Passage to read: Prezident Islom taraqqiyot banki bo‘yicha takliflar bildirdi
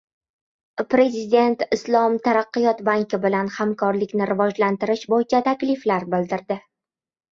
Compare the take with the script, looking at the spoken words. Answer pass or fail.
fail